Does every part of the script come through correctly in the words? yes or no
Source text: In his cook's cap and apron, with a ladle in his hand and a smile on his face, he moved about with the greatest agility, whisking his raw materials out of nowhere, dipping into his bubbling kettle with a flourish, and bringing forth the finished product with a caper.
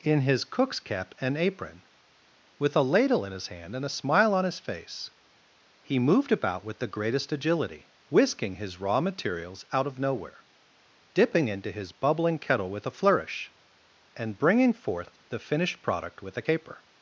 yes